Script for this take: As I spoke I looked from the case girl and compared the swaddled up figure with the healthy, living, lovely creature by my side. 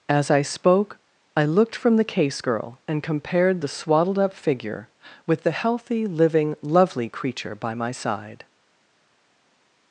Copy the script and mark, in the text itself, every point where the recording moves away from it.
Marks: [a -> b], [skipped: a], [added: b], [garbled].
As I spoke I looked from the case girl and compared the swaddled up figure with the healthy, living, lovely creature by my side.